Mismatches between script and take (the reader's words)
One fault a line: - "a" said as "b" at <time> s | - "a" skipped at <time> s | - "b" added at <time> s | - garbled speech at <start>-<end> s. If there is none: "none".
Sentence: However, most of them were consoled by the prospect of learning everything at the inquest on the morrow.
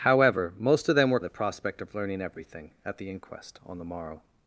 - "consoled by" skipped at 1.2 s